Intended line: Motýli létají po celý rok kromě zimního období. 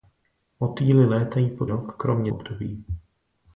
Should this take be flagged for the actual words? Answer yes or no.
yes